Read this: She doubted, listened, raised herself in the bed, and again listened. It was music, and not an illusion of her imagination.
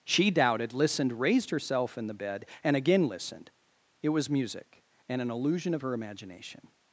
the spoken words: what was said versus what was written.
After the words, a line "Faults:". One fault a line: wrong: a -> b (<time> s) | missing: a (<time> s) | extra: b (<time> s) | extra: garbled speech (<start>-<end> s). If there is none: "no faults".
She doubted, listened, raised herself in the bed, and again listened. It was music, and an illusion of her imagination.
Faults:
missing: not (5.2 s)